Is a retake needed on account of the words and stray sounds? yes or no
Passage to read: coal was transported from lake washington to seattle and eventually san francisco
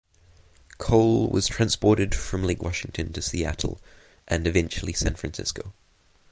no